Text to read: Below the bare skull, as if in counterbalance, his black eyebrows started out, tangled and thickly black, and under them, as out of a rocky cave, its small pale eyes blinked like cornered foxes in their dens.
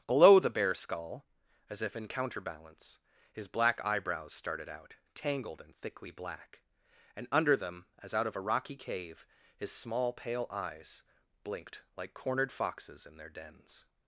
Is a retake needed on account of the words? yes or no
yes